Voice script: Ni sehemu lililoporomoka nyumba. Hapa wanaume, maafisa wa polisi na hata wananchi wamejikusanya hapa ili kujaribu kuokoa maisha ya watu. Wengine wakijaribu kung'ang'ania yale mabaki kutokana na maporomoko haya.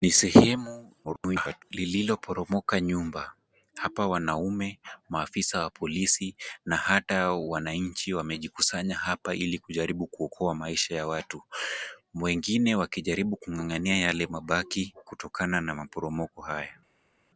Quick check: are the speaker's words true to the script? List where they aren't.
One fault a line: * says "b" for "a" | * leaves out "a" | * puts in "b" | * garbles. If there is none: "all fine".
* garbles